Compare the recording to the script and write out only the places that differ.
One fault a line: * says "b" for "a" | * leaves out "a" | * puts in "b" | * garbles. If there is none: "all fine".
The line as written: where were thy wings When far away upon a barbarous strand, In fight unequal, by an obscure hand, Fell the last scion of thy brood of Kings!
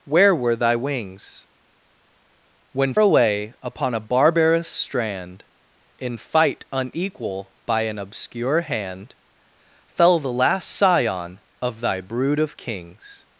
* leaves out "far"